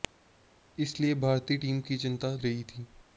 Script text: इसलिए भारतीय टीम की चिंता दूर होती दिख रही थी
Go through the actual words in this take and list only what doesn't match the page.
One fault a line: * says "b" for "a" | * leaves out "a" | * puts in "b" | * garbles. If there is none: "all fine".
* leaves out "दूर होती दिख"